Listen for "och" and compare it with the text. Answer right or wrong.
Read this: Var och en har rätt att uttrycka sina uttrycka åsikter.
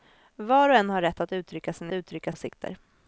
right